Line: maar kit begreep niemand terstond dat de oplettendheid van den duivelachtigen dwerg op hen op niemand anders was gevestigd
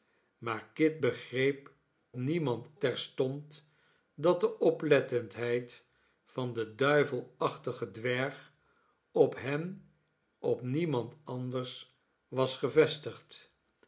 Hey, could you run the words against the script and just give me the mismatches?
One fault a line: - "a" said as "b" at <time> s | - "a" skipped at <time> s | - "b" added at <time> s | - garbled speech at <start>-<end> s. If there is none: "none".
none